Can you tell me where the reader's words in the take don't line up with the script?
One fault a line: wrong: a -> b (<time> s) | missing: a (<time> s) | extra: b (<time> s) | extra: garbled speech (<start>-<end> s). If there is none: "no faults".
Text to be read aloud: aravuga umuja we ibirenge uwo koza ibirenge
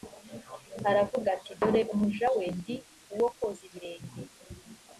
extra: ati dore (1.4 s)
wrong: ibirenge -> ndi (2.6 s)